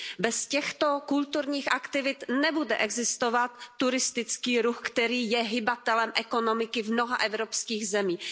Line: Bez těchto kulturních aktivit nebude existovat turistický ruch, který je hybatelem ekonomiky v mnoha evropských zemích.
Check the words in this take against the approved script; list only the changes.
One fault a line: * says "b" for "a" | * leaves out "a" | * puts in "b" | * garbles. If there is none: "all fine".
all fine